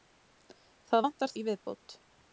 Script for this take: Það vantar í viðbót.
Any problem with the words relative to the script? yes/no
no